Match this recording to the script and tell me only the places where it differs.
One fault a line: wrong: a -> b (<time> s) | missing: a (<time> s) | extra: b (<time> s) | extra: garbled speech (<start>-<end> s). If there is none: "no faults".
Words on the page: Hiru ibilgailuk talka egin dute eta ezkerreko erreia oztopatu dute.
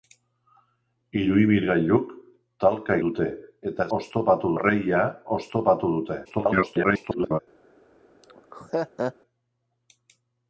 missing: egin (3.0 s)
wrong: ezkerreko -> oztopatu (4.0 s)
extra: garbled speech (6.2-7.4 s)